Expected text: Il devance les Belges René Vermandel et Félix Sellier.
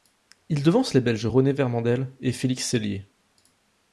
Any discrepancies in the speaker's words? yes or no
no